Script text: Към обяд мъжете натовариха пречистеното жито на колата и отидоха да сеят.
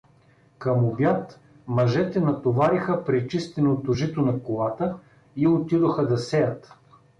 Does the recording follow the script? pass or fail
pass